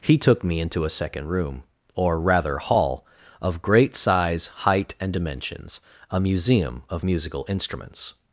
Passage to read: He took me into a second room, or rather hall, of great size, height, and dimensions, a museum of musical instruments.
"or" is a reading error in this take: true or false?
false